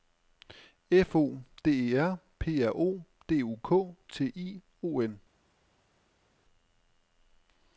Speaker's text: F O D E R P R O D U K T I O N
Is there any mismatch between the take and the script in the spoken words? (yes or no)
no